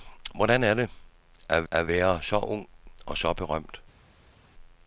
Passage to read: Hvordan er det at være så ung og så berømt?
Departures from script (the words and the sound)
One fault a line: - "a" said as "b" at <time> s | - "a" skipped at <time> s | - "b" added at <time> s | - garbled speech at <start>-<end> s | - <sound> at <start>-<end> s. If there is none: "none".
- "at" added at 1.7 s